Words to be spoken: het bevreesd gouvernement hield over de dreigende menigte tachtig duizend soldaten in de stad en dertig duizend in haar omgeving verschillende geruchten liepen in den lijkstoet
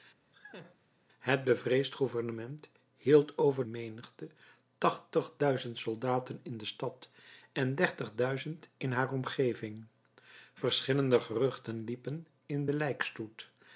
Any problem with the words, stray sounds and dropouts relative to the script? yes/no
yes